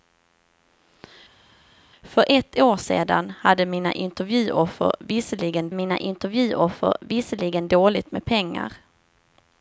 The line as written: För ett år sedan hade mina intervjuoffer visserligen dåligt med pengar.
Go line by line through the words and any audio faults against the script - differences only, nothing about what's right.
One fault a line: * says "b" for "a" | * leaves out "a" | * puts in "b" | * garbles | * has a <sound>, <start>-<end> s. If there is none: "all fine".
* puts in "mina intervjuoffer visserligen"